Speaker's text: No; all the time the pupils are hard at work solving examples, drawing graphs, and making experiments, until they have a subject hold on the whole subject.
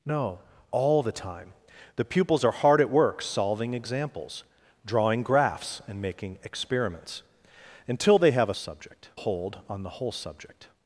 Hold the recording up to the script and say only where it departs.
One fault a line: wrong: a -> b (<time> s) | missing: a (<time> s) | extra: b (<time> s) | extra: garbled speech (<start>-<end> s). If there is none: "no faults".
no faults